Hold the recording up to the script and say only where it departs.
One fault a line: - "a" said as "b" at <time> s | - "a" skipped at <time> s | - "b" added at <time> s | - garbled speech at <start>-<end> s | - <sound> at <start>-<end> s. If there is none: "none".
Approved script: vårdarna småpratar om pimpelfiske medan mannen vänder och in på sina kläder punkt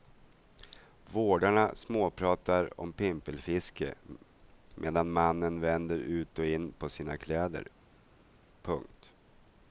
- "ut" added at 6.0 s